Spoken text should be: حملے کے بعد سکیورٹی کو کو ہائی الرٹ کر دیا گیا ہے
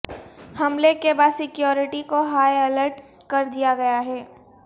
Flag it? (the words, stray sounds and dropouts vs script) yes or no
yes